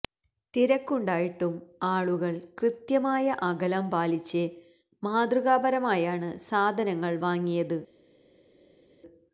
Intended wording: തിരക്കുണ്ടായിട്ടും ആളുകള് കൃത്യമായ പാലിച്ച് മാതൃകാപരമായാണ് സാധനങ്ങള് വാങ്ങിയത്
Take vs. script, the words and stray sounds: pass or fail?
fail